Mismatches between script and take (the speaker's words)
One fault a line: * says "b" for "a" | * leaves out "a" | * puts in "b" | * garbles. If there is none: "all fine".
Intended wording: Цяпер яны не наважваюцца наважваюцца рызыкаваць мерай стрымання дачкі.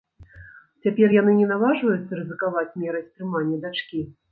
* leaves out "наважваюцца"